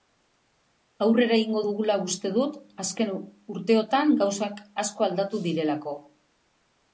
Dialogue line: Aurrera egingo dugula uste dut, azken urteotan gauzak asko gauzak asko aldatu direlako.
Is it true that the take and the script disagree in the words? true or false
true